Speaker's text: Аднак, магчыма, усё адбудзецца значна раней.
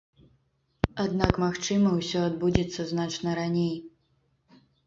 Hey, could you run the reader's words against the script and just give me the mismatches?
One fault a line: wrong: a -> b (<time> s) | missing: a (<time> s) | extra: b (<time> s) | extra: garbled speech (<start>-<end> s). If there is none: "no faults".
no faults